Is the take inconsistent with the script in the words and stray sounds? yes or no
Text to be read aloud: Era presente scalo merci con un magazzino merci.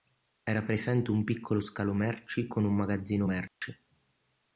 yes